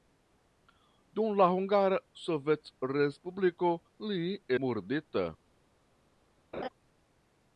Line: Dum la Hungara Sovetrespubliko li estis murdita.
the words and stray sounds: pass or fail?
fail